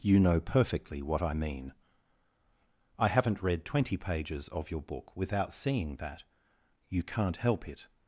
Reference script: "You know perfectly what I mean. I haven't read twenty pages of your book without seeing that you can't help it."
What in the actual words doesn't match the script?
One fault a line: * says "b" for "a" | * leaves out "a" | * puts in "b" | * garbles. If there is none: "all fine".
all fine